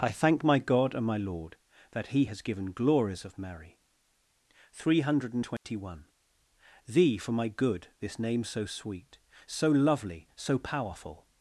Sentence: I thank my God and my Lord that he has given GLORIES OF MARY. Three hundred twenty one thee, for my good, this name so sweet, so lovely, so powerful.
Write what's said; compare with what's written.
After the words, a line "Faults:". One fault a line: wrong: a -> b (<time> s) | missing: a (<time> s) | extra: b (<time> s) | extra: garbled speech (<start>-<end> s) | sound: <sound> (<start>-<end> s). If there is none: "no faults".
I thank my God and my Lord that he has given GLORIES OF MARY. Three hundred twenty one thee, for my good, this name so sweet, so lovely, so powerful.
Faults:
sound: dropout (5.6-5.6 s)